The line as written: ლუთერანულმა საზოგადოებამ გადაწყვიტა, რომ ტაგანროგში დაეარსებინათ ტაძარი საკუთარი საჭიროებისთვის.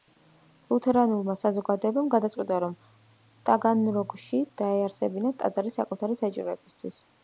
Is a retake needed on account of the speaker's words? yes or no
no